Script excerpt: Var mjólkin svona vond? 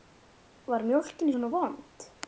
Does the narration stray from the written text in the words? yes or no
no